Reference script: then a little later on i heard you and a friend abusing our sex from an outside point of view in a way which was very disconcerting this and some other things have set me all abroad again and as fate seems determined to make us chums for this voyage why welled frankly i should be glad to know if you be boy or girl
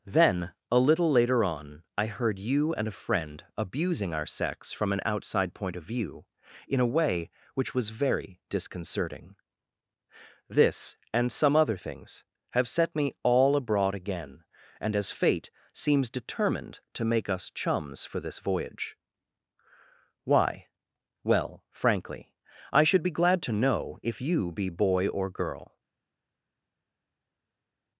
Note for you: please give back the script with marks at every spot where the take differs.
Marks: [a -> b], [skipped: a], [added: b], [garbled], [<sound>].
then a little later on i heard you and a friend abusing our sex from an outside point of view in a way which was very disconcerting this and some other things have set me all abroad again and as fate seems determined to make us chums for this voyage why [welled -> well] frankly i should be glad to know if you be boy or girl